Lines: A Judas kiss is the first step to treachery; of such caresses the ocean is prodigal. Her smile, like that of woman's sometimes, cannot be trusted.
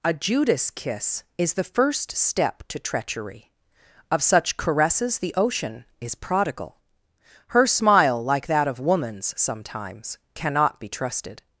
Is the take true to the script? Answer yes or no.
yes